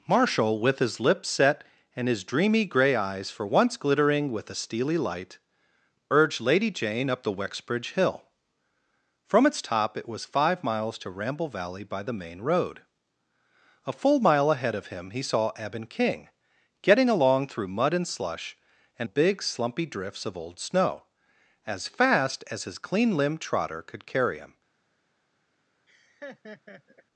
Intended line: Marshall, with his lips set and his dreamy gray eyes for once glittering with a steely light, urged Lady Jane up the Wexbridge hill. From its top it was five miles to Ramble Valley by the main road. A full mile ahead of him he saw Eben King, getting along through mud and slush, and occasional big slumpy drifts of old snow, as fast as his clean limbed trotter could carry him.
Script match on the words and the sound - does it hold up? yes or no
no